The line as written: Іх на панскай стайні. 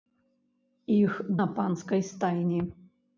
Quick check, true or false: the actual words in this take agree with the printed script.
true